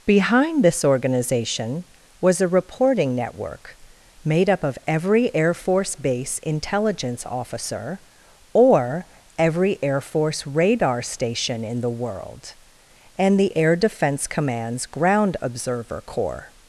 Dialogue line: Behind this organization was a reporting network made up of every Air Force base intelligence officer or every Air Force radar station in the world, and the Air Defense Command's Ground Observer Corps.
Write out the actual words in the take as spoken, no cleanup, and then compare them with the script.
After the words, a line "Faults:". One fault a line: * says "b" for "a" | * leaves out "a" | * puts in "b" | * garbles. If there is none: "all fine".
Behind this organization was a reporting network made up of every Air Force base intelligence officer or every Air Force radar station in the world, and the Air Defense Command's Ground Observer Corps.
Faults:
all fine